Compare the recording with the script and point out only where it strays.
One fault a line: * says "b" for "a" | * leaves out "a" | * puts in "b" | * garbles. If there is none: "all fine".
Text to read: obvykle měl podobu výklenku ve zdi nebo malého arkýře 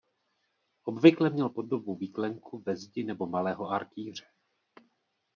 all fine